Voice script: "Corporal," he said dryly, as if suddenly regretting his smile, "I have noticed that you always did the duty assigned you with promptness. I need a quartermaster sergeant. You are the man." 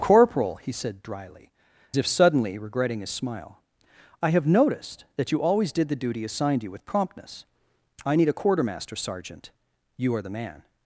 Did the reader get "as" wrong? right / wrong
wrong